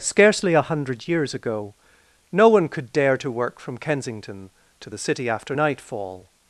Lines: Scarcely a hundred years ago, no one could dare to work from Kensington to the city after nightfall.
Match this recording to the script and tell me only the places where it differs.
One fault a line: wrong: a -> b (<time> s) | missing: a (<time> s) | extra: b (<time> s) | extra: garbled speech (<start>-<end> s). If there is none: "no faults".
no faults